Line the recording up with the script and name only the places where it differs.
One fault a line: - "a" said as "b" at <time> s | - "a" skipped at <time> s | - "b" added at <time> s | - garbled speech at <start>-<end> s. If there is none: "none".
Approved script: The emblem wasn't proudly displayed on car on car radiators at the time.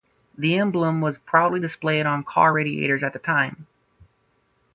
- "wasn't" said as "was" at 1.0 s
- "on car" skipped at 2.5 s